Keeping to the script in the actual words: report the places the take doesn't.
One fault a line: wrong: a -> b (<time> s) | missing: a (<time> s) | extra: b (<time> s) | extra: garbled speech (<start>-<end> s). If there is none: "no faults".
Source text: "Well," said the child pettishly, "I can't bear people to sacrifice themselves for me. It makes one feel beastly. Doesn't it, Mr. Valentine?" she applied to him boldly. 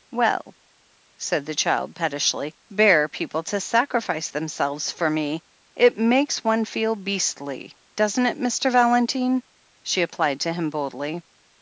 missing: I can't (2.5 s)